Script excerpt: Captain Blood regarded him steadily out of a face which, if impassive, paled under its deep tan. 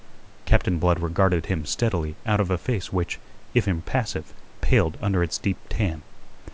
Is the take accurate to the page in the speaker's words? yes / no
yes